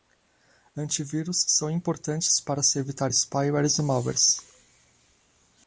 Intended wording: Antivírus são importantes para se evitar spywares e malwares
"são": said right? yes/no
yes